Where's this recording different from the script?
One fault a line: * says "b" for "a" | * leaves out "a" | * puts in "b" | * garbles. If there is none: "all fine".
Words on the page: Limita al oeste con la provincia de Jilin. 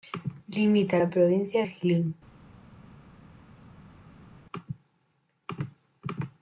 * leaves out "al oeste con"
* leaves out "de"